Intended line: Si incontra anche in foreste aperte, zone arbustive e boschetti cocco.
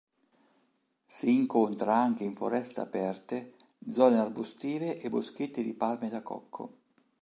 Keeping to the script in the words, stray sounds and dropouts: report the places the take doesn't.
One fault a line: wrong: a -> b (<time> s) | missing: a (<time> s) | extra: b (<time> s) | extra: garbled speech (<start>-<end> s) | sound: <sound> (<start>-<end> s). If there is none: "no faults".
extra: di palme da (5.6 s)